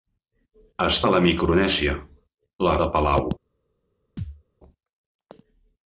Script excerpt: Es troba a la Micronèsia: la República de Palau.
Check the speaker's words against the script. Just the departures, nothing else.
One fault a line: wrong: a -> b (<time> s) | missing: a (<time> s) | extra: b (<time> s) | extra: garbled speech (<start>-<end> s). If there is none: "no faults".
missing: troba (1.0 s)
missing: República (2.8 s)